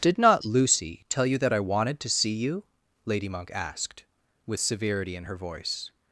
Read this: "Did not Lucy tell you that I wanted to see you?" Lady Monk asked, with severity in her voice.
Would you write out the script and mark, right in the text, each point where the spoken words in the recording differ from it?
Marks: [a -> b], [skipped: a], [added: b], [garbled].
"Did not Lucy tell you that I wanted to see you?" Lady Monk asked, with severity in her voice.